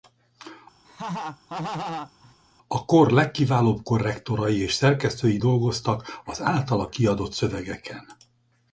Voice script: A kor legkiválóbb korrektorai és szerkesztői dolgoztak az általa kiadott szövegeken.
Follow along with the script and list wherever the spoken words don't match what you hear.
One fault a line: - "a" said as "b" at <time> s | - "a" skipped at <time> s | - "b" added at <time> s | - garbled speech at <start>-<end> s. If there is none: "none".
none